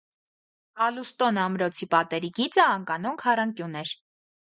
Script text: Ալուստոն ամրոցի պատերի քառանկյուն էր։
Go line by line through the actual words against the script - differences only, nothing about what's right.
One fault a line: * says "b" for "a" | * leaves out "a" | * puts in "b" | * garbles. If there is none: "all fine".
* puts in "գիծը անկանոն"